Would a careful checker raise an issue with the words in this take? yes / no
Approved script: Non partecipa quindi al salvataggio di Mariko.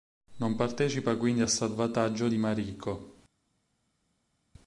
no